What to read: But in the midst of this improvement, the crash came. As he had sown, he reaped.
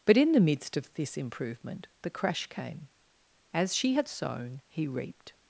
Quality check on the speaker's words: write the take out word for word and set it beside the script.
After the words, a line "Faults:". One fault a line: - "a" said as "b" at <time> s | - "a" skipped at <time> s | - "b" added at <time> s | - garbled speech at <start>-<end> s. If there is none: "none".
But in the midst of this improvement, the crash came. As she had sown, he reaped.
Faults:
- "he" said as "she" at 3.7 s